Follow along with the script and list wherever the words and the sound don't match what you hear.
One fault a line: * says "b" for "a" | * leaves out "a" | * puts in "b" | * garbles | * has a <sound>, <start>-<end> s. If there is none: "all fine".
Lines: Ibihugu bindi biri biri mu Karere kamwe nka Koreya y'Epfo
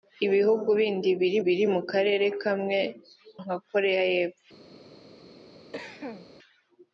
* has a cough, 5.7-6.3 s